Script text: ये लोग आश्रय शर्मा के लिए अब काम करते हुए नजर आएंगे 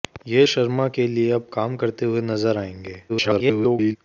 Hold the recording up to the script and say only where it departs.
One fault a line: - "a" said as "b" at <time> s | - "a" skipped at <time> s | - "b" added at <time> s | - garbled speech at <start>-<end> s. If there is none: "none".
- "लोग आश्रय" skipped at 0.5 s
- garbled speech at 3.1-4.0 s